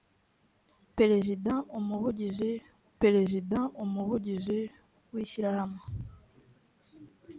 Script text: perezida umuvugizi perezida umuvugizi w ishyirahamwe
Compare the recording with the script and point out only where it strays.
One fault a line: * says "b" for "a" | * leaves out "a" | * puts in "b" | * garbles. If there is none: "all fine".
all fine